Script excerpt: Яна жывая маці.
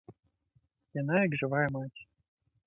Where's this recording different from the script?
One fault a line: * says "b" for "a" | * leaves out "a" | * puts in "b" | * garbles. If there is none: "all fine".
* puts in "як"